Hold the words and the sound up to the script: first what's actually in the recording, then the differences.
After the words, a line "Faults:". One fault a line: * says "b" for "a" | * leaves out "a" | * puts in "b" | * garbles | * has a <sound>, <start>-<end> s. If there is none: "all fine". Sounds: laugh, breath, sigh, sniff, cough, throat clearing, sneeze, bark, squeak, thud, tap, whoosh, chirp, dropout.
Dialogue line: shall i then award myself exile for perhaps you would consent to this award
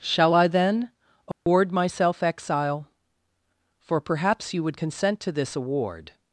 shall i then award myself exile for perhaps you would consent to this award
Faults:
* has a dropout, 1.3-1.5 s